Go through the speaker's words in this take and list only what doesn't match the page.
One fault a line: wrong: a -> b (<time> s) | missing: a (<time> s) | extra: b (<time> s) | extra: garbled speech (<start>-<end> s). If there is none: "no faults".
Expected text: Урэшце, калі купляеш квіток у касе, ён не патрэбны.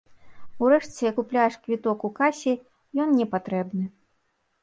missing: калі (1.1 s)